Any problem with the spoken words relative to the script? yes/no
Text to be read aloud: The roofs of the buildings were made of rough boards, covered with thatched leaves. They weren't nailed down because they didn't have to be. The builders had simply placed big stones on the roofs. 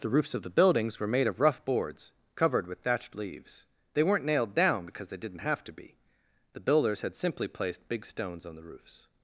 no